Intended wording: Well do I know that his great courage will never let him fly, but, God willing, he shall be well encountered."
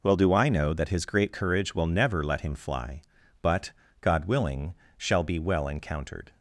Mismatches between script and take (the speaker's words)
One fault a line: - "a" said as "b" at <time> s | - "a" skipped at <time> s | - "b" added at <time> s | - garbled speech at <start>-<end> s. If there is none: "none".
- "he" skipped at 4.7 s